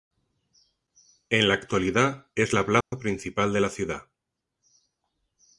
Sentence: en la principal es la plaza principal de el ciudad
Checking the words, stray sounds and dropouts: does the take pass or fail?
fail